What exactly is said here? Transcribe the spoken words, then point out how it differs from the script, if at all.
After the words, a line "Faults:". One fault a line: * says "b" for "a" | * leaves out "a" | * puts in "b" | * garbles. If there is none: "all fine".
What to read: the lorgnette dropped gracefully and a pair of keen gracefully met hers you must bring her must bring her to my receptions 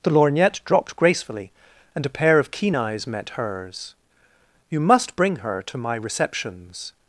the lorgnette dropped gracefully and a pair of keen eyes met hers you must bring her to my receptions
Faults:
* says "eyes" for "gracefully"
* leaves out "must bring her"